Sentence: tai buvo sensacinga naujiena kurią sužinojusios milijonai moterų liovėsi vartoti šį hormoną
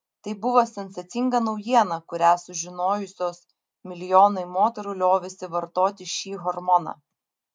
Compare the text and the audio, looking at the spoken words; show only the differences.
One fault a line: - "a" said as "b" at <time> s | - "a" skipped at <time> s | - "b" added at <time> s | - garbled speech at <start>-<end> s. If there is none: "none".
none